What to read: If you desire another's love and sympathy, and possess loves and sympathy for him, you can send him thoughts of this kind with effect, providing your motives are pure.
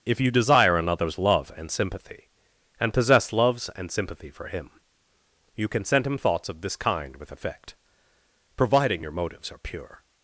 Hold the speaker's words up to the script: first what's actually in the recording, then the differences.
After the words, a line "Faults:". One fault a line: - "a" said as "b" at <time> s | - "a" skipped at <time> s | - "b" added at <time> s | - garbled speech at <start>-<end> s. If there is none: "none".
If you desire another's love and sympathy, and possess loves and sympathy for him, you can send him thoughts of this kind with effect, providing your motives are pure.
Faults:
none